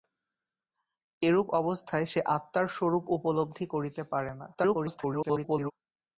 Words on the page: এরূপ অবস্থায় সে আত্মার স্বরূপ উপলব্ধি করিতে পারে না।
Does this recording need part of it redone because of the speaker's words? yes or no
yes